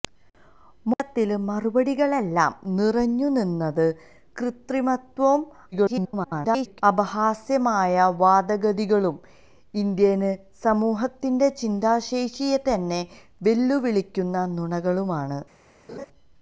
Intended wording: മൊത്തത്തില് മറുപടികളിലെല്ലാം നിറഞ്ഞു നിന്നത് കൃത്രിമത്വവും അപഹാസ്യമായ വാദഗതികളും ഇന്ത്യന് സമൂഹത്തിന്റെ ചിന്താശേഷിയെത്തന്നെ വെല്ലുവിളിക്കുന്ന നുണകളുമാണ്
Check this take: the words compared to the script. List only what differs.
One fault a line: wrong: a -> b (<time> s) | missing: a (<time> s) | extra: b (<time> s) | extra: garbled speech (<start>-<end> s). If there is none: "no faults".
extra: garbled speech (5.7-6.8 s)